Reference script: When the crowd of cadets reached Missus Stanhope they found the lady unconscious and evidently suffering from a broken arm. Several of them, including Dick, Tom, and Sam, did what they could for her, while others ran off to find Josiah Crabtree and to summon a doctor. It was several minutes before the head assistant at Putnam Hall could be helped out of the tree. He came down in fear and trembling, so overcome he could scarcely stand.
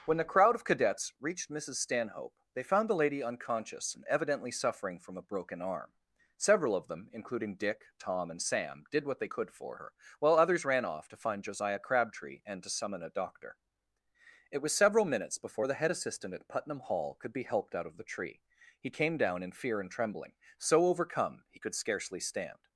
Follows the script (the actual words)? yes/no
yes